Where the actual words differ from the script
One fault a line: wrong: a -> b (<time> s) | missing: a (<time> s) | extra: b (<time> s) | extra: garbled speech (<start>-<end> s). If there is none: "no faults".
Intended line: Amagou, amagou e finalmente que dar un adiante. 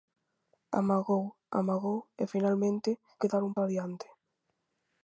no faults